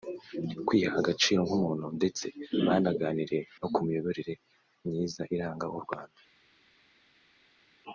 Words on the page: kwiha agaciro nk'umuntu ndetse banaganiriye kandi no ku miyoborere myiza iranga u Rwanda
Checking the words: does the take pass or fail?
fail